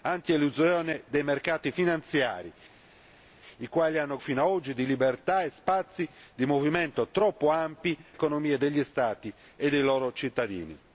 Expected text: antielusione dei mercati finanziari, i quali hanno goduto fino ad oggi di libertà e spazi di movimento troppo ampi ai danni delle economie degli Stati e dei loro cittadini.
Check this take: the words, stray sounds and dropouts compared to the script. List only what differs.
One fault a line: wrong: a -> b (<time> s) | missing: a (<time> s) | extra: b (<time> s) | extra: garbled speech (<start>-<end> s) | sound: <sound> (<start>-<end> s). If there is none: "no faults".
missing: goduto (4.2 s)
missing: ai danni delle (8.0 s)